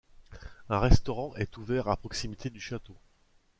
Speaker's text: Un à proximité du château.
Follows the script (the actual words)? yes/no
no